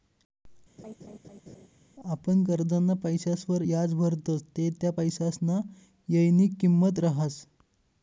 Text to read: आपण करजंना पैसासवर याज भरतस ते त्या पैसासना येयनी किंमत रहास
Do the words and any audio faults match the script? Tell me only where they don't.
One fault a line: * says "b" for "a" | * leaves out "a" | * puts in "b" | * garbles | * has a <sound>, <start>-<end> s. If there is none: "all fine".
* has a laugh, 0.8-1.7 s